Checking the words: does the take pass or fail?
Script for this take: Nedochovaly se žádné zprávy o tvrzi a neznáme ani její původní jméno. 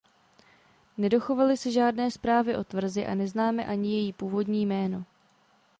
pass